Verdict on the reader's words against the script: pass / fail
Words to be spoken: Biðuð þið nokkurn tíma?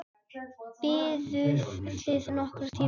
pass